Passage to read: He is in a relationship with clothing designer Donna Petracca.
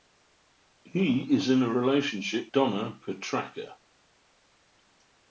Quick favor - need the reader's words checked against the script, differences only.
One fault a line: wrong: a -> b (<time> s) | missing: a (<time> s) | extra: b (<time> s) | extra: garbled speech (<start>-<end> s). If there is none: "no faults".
missing: with clothing designer (2.5 s)